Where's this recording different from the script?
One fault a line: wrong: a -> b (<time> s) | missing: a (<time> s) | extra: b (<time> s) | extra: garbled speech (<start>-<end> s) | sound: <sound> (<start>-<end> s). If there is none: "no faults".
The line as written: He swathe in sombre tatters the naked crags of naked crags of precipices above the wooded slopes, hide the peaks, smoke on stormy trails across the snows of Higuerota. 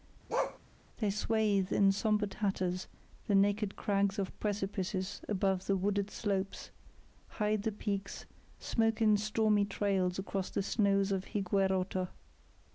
sound: bark (0.3-0.6 s)
wrong: He -> They (1.0 s)
missing: naked crags of (4.4 s)
wrong: on -> in (9.0 s)